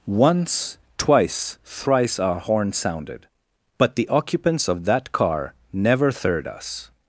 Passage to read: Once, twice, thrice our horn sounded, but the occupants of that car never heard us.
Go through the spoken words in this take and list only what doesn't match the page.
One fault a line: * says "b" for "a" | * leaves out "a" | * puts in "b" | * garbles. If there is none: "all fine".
* says "third" for "heard"